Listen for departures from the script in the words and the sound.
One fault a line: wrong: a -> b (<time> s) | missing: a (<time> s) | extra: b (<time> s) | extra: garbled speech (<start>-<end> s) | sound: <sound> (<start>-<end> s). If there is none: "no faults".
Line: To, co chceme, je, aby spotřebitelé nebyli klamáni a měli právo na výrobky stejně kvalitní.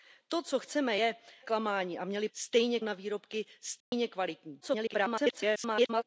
missing: aby spotřebitelé nebyli (1.1 s)
wrong: právo -> stejně (2.3 s)
sound: dropout (3.8-3.9 s)
extra: garbled speech (4.6-6.0 s)